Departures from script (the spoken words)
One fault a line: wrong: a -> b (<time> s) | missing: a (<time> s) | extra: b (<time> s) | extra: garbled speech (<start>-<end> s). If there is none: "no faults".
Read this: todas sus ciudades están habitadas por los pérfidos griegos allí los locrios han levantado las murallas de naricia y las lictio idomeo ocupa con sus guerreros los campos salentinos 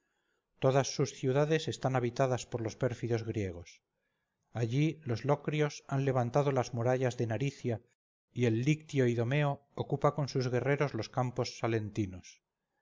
wrong: las -> el (8.4 s)